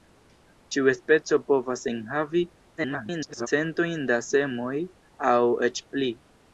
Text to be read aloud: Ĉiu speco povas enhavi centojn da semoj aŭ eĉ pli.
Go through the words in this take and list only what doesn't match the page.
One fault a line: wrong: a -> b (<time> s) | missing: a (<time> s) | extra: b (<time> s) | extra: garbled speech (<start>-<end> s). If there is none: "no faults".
extra: garbled speech (2.8-3.5 s)